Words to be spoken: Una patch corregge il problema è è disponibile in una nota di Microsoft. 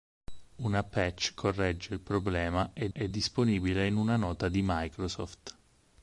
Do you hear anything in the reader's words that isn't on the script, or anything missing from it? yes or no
no